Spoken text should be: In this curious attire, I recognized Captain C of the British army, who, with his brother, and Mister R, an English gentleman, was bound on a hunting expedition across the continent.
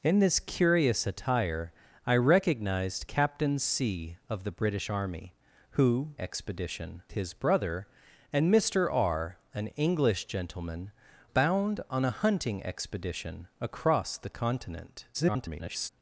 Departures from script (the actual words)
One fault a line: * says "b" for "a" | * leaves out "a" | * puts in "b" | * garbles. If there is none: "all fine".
* says "expedition" for "with"
* leaves out "was"
* garbles